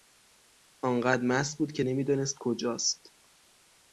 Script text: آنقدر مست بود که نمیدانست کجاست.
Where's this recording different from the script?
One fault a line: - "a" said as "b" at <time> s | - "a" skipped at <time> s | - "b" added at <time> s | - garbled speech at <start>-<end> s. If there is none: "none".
none